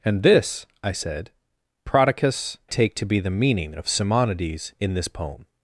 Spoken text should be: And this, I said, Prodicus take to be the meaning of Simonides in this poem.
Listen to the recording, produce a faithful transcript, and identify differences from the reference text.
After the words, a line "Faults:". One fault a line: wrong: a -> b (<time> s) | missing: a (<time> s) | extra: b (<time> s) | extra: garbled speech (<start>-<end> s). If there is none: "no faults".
And this, I said, Prodicus take to be the meaning of Simonides in this poem.
Faults:
no faults